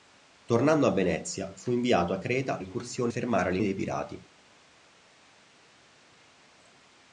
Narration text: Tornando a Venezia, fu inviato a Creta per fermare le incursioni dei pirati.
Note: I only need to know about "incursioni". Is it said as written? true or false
false